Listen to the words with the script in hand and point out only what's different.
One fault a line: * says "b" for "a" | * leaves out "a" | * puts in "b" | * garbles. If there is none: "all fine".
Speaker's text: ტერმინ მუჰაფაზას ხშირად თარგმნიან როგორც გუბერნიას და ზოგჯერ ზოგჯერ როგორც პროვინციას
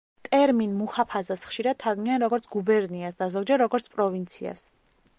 * leaves out "ზოგჯერ"